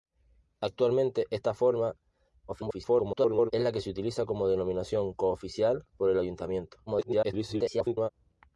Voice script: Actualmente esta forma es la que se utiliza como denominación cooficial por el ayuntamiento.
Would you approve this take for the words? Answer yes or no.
no